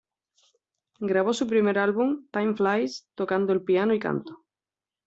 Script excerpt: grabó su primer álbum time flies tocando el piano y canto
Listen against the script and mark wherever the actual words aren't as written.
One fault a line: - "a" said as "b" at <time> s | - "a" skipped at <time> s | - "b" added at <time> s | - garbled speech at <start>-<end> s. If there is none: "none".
none